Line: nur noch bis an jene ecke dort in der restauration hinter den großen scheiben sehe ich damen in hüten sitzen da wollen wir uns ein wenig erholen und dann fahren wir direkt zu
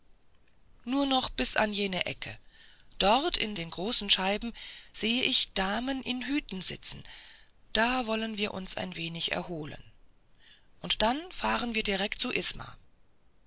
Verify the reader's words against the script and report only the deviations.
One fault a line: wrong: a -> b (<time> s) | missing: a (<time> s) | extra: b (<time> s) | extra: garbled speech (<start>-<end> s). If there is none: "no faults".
missing: der restauration hinter (3.5 s)